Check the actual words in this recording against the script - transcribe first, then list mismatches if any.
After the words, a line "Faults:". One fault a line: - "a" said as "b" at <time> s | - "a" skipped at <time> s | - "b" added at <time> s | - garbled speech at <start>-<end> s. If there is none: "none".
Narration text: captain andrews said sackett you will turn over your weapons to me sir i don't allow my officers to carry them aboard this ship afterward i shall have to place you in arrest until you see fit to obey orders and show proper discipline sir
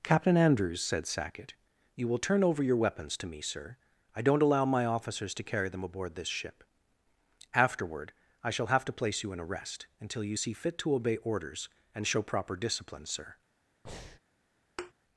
captain andrews said sackett you will turn over your weapons to me sir i don't allow my officers to carry them aboard this ship afterward i shall have to place you in arrest until you see fit to obey orders and show proper discipline sir
Faults:
none